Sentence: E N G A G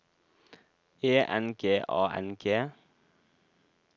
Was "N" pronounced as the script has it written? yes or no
yes